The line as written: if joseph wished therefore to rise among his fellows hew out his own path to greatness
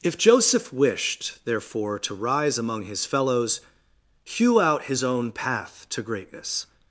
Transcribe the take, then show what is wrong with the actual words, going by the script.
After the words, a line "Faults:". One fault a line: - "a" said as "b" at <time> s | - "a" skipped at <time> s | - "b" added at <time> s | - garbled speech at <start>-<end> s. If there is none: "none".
if joseph wished therefore to rise among his fellows hew out his own path to greatness
Faults:
none